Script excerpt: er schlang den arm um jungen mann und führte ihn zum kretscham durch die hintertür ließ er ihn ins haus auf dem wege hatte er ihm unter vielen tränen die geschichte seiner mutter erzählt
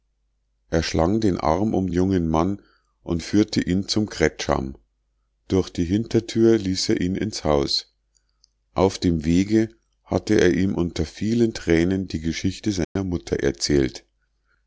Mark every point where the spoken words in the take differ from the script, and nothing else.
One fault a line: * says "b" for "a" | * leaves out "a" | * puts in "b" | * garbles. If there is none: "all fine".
all fine